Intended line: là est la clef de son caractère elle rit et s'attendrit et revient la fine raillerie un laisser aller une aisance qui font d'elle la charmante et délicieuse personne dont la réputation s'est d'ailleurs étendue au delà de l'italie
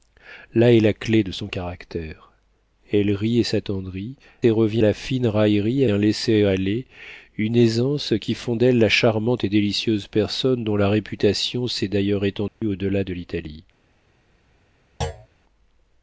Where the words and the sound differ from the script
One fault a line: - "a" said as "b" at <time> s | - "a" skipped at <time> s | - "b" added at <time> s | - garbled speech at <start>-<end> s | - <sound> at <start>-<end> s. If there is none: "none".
- dropout at 12.5-12.6 s
- thud at 15.0-15.3 s